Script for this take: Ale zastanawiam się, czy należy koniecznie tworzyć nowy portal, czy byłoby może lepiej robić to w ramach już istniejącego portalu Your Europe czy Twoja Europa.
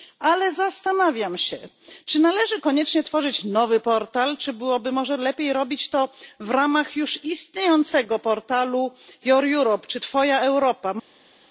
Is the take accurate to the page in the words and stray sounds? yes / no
yes